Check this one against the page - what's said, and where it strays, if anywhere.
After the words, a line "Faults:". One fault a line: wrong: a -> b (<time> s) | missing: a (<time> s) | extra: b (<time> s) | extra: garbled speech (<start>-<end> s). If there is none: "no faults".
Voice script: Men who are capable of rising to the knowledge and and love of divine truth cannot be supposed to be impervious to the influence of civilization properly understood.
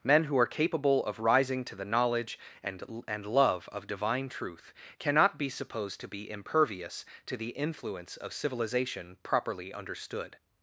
Men who are capable of rising to the knowledge and and love of divine truth cannot be supposed to be impervious to the influence of civilization properly understood.
Faults:
no faults